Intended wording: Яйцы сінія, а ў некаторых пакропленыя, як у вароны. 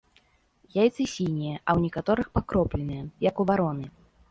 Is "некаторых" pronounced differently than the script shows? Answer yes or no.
no